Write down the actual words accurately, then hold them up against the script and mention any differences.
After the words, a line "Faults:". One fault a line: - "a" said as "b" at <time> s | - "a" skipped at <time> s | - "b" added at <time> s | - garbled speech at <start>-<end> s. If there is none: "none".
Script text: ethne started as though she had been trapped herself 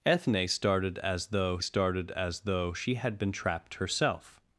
ethne started as though started as though she had been trapped herself
Faults:
- "started as though" added at 1.6 s